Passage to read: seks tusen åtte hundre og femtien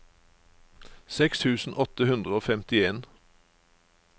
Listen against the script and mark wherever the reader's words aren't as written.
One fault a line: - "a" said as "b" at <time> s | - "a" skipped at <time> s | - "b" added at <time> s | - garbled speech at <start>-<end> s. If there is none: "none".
none